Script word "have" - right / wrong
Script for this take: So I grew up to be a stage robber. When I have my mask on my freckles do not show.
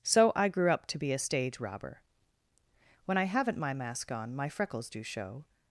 wrong